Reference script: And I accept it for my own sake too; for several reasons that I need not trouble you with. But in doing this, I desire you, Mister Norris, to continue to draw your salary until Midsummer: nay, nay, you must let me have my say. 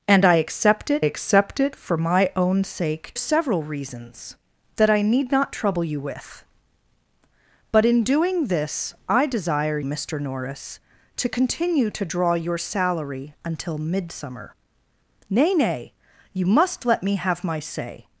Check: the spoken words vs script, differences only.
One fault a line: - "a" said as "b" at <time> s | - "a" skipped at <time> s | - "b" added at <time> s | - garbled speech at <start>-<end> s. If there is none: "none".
- "accept it" added at 1.0 s
- "too for" skipped at 3.1 s
- "you" skipped at 9.8 s